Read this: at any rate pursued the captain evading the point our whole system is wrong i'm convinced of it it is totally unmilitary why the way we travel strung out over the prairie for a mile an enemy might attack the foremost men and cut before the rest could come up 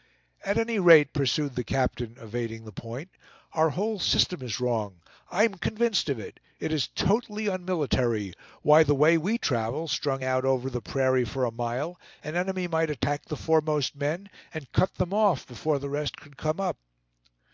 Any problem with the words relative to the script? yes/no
yes